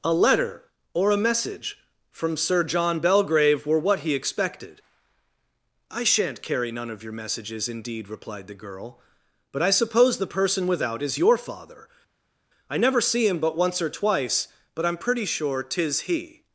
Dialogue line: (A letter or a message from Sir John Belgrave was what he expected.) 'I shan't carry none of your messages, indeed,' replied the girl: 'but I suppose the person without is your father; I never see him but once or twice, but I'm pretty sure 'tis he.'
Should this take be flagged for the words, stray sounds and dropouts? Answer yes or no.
yes